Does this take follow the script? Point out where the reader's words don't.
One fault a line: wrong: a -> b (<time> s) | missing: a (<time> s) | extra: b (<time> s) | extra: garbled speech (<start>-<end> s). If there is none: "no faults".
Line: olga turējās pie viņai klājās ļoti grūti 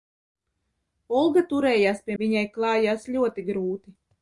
no faults